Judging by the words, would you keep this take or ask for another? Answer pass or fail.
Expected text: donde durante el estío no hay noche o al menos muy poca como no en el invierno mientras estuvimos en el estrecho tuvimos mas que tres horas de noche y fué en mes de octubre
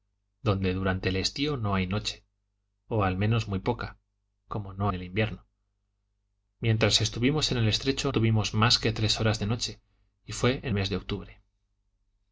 pass